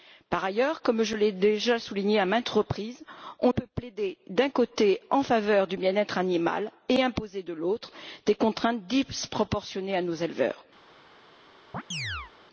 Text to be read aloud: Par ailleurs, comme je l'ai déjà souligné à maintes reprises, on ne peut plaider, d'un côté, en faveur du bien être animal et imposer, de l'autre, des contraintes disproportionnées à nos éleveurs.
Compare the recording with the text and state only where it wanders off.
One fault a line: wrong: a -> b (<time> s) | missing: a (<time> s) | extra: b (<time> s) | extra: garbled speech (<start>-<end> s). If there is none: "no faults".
missing: ne (3.5 s)